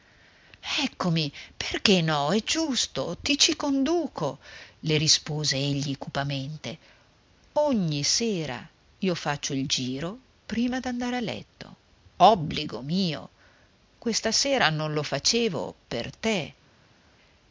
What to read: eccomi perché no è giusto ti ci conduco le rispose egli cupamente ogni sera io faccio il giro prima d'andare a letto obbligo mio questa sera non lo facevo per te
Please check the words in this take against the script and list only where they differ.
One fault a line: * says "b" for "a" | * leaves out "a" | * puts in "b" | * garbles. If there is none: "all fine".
all fine